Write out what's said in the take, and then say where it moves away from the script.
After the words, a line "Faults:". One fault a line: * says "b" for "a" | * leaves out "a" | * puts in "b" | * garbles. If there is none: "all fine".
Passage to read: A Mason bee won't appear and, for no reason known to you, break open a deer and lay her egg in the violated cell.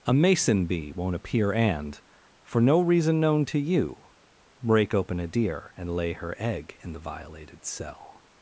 A Mason bee won't appear and, for no reason known to you, break open a deer and lay her egg in the violated cell.
Faults:
all fine